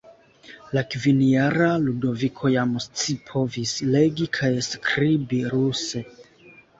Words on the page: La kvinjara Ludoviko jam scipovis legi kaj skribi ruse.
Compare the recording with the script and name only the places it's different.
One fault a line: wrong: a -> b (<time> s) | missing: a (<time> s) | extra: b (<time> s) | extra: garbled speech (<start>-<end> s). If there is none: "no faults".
no faults